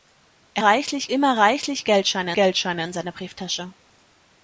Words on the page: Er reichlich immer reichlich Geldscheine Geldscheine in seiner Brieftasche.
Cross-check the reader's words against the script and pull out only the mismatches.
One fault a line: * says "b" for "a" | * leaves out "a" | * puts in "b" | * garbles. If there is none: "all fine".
all fine